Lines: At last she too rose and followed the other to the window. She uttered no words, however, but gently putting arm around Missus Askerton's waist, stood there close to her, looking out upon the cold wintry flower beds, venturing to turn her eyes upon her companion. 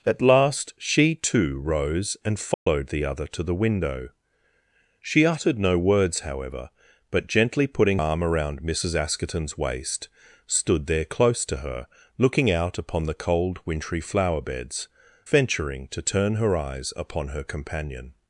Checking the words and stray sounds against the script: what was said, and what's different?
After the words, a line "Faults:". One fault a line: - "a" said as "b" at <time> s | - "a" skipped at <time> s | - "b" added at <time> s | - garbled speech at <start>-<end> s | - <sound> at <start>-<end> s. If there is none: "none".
At last she too rose and followed the other to the window. She uttered no words, however, but gently putting arm around Missus Askerton's waist, stood there close to her, looking out upon the cold wintry flower beds, venturing to turn her eyes upon her companion.
Faults:
- dropout at 2.5-2.7 s